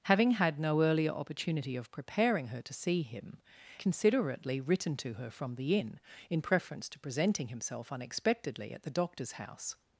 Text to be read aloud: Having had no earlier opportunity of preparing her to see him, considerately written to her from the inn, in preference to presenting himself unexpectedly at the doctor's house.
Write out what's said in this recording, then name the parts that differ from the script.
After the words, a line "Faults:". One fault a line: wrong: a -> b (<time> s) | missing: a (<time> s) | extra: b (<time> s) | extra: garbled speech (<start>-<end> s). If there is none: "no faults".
Having had no earlier opportunity of preparing her to see him, considerately written to her from the inn, in preference to presenting himself unexpectedly at the doctor's house.
Faults:
no faults